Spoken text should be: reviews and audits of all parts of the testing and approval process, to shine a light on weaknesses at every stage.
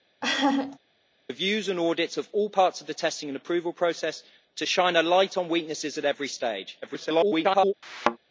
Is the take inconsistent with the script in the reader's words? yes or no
yes